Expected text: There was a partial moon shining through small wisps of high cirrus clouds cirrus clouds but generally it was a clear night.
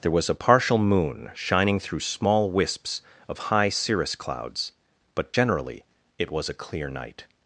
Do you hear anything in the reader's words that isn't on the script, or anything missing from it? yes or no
yes